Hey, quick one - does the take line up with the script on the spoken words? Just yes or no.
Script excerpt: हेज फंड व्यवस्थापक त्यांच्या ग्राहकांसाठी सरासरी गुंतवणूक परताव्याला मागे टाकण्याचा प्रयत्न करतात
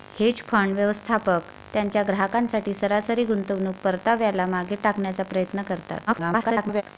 no